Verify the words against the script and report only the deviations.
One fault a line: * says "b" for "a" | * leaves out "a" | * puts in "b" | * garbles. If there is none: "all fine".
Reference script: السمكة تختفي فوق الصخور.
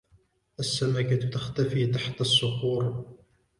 * says "تحت" for "فوق"